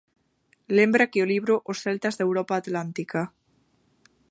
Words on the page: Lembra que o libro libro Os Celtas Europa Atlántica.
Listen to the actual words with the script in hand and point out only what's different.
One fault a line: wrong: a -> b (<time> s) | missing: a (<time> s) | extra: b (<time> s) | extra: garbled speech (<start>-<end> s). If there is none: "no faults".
missing: libro (1.5 s)
extra: da (2.1 s)